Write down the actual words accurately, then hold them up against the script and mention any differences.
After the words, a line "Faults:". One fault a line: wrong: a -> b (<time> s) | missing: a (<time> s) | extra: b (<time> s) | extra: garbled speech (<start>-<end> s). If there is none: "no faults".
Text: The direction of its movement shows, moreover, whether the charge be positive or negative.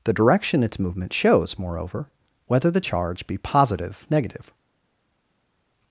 The direction its movement shows, moreover, whether the charge be positive negative.
Faults:
missing: of (0.6 s)
missing: or (4.1 s)